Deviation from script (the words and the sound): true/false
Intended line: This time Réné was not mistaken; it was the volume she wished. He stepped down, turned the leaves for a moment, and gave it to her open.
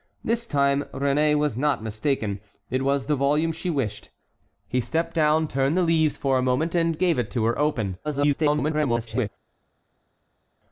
true